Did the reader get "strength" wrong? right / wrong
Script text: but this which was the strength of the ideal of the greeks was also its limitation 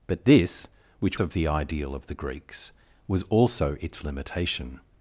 wrong